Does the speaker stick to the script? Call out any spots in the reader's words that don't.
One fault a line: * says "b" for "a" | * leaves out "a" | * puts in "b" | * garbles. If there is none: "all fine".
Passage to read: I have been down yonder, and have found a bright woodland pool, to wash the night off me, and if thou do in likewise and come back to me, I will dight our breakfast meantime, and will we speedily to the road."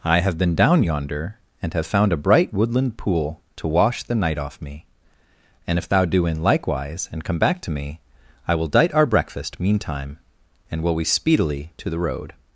all fine